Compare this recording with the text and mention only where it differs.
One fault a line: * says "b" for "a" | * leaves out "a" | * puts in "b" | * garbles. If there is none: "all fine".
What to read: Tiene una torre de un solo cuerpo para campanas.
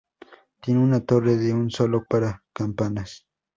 * leaves out "cuerpo"